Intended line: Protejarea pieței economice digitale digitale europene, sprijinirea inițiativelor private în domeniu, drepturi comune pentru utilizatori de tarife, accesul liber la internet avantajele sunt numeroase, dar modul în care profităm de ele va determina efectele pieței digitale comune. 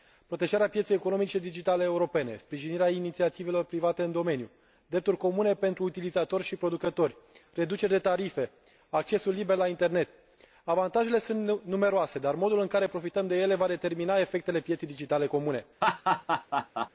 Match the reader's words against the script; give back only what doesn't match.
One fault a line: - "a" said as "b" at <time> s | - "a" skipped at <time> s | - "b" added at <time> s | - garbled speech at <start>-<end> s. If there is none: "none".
- "digitale" skipped at 1.8 s
- "și producători reduceri" added at 6.4 s